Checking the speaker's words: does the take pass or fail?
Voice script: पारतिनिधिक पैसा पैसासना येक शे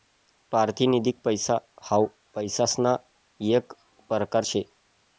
fail